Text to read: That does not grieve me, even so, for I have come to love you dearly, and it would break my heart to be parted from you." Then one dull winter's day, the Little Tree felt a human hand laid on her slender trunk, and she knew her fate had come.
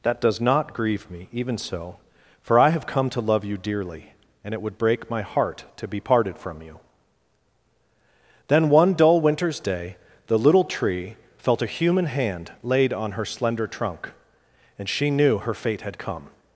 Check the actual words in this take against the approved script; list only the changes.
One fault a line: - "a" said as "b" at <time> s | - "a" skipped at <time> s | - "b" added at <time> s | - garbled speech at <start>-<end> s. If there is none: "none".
none